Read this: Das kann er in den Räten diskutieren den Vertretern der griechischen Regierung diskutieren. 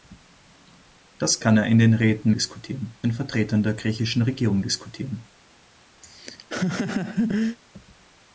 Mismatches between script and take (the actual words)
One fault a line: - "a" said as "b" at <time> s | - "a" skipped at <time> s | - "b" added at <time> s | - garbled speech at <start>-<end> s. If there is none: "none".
none